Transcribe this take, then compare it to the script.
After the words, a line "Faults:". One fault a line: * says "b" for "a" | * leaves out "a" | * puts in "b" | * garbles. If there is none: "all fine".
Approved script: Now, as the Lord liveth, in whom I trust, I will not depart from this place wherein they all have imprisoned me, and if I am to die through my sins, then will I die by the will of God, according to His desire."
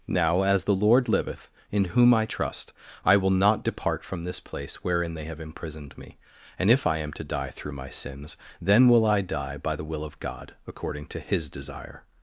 Now, as the Lord liveth, in whom I trust, I will not depart from this place wherein they have imprisoned me, and if I am to die through my sins, then will I die by the will of God, according to His desire."
Faults:
* leaves out "all"